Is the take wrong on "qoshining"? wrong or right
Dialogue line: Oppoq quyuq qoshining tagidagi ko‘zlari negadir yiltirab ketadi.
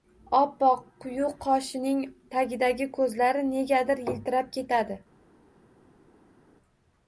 right